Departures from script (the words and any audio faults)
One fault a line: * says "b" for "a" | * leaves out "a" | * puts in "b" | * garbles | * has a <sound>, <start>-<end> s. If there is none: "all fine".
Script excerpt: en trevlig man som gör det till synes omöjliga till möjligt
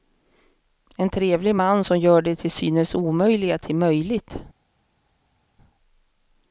all fine